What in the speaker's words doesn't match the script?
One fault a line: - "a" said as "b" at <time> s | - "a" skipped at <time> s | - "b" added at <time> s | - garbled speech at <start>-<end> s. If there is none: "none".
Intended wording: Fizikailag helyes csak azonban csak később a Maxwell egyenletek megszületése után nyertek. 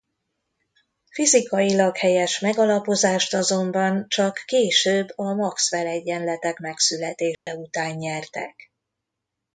- "csak" said as "megalapozást" at 2.4 s